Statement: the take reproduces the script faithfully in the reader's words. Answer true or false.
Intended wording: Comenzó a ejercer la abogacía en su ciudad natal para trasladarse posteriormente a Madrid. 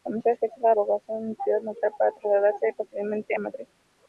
true